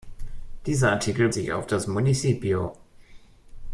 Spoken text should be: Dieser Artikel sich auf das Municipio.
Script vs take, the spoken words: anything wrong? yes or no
no